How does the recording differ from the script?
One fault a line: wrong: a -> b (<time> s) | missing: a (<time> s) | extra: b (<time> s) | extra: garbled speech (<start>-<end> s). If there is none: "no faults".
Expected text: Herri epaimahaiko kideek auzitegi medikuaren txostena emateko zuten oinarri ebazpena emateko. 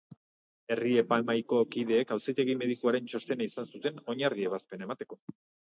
wrong: emateko -> izan (3.5 s)